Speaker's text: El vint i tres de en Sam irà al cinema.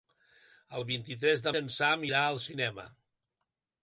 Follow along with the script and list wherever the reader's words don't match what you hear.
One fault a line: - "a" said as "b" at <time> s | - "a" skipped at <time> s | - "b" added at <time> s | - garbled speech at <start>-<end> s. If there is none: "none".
none